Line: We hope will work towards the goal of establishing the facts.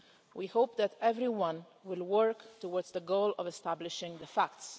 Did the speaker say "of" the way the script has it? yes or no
yes